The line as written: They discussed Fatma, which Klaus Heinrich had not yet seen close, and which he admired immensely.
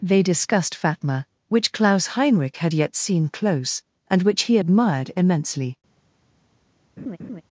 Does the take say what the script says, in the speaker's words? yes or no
no